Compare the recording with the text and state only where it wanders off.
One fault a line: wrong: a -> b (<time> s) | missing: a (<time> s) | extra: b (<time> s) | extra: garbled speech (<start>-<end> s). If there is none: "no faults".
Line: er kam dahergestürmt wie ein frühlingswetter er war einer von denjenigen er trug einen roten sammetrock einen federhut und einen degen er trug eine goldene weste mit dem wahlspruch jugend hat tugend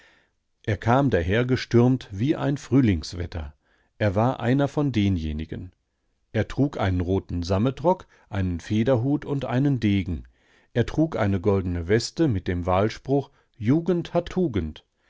no faults